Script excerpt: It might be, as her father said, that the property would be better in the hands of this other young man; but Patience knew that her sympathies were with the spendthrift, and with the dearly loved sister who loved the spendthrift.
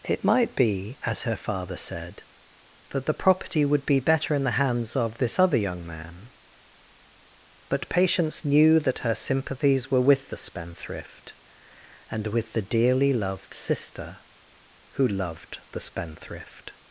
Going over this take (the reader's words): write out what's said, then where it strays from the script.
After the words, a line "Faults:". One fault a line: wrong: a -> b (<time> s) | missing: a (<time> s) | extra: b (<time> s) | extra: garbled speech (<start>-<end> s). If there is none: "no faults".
It might be, as her father said, that the property would be better in the hands of this other young man; but Patience knew that her sympathies were with the spendthrift, and with the dearly loved sister who loved the spendthrift.
Faults:
no faults